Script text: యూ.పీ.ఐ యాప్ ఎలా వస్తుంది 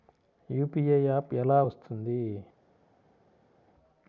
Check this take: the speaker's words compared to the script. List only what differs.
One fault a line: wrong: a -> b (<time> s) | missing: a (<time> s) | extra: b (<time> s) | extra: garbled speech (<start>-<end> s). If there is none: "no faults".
no faults